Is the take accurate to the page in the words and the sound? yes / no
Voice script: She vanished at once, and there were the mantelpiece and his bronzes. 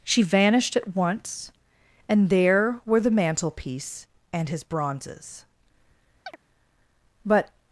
no